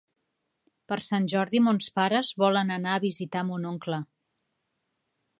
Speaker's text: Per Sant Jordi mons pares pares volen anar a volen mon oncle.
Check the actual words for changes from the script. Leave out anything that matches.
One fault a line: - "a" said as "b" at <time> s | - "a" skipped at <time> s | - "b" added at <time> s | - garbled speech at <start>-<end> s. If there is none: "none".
- "pares" skipped at 2.3 s
- "volen" said as "visitar" at 3.0 s